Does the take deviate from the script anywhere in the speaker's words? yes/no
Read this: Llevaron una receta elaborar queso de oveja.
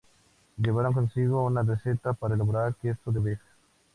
yes